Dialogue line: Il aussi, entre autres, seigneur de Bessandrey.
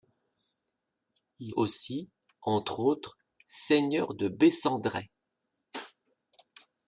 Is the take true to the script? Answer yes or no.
yes